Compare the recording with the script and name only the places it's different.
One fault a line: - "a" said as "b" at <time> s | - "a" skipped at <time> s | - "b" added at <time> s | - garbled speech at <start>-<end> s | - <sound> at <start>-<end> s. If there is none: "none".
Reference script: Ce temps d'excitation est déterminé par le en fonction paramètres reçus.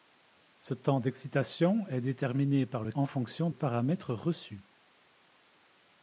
none